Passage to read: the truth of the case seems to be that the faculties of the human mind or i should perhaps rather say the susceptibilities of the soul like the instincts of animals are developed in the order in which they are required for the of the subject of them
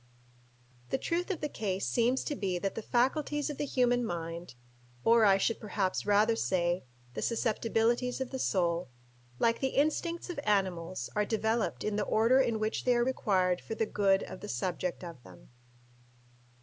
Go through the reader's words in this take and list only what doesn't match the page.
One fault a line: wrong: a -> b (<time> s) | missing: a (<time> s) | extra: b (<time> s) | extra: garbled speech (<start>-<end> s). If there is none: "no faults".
extra: good (13.9 s)